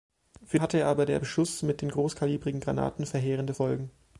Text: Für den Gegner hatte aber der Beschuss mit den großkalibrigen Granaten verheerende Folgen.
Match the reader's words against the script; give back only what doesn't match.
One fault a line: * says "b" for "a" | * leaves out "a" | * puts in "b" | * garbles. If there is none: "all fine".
* leaves out "den Gegner"